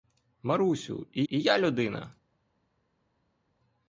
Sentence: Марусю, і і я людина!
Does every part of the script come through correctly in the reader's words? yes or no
yes